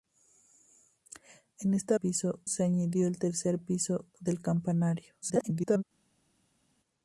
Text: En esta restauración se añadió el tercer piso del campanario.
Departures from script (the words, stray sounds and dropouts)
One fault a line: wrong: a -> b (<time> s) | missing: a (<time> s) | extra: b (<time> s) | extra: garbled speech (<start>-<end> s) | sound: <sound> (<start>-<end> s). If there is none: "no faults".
wrong: restauración -> piso (1.9 s)
extra: garbled speech (5.2-5.8 s)